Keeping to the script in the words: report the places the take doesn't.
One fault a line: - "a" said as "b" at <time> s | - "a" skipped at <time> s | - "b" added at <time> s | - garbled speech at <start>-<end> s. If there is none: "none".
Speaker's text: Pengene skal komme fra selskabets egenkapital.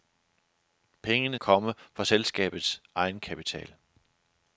- "skal" skipped at 1.4 s